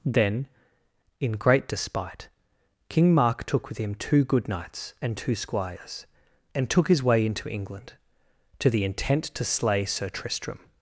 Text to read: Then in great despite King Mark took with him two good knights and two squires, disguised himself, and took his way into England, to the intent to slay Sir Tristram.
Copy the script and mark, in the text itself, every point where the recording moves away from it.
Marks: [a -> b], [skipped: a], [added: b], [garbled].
Then in great despite King Mark took with him two good knights and two squires, [skipped: disguised himself,] and took his way into England, to the intent to slay Sir Tristram.